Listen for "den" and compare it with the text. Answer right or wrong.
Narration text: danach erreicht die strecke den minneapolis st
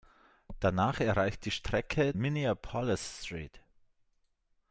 wrong